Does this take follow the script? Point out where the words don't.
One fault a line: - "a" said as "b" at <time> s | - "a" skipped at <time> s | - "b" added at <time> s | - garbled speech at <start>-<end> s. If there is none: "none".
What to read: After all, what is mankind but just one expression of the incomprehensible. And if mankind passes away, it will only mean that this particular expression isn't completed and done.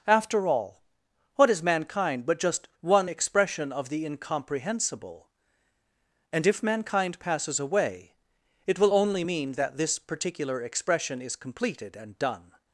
- "isn't" said as "is" at 11.2 s